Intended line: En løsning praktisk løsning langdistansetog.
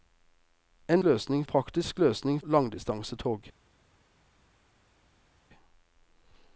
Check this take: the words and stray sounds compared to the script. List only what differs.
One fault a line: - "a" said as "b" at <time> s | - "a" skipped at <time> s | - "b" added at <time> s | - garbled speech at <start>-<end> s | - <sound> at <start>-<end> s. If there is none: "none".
none